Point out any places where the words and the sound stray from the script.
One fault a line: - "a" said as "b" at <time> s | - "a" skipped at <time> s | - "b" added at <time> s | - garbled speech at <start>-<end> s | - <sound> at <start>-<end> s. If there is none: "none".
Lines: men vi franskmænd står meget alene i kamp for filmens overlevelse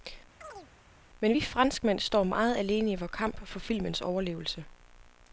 - chirp at 0.4-0.7 s
- "vor" added at 2.9 s